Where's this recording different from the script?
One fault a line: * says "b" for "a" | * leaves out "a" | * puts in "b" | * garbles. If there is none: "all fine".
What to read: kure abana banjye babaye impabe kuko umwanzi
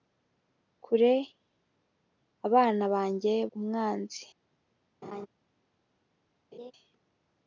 * leaves out "babaye impabe kuko"